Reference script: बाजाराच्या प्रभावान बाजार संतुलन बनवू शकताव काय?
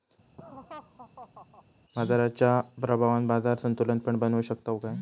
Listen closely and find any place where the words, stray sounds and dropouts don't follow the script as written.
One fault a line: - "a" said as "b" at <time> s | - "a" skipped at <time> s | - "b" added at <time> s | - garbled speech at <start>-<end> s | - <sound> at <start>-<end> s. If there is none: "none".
- laugh at 0.4-1.6 s
- "पण" added at 4.0 s